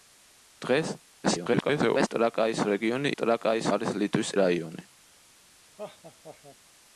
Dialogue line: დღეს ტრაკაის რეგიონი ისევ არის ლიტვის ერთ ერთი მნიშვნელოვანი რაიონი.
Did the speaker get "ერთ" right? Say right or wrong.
wrong